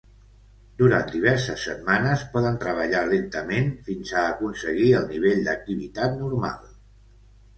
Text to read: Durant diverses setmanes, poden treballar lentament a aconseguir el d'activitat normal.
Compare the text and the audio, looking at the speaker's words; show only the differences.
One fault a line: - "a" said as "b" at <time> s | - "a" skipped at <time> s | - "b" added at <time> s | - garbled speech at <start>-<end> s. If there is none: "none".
- "fins" added at 3.9 s
- "nivell" added at 5.1 s